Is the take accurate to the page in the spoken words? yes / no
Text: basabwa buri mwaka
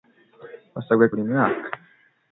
yes